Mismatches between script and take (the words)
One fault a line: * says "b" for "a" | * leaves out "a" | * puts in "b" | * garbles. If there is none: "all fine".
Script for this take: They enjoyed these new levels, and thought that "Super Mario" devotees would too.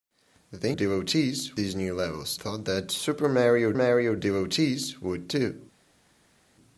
* says "devotees" for "enjoyed"
* leaves out "and"
* puts in "Mario"